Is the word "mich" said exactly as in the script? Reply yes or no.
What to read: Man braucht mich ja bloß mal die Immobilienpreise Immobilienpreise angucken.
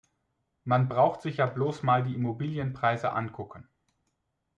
no